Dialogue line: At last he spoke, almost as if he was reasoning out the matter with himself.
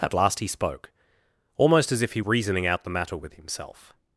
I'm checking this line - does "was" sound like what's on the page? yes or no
no